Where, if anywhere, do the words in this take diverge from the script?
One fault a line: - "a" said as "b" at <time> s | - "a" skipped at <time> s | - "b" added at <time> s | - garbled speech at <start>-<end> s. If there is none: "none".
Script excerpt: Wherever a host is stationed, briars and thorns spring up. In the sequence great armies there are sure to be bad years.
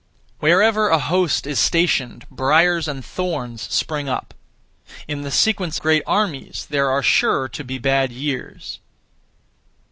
none